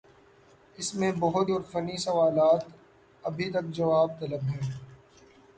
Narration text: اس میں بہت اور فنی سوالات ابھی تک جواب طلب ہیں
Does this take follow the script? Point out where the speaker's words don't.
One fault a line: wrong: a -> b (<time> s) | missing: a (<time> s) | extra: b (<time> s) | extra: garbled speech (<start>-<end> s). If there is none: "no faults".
no faults